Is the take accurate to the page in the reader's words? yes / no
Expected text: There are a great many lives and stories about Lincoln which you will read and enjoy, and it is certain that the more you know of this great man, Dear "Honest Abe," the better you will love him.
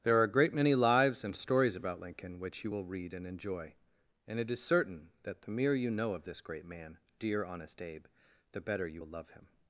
no